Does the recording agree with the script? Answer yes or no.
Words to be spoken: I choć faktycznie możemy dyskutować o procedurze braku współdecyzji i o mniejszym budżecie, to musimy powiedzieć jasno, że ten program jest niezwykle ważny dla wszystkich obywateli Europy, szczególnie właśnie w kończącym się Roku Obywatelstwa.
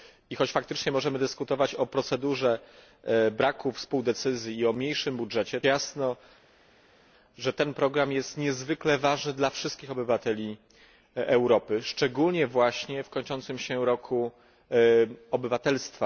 no